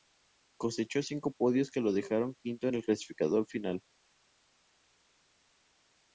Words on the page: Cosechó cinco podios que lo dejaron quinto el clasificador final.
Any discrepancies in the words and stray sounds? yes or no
yes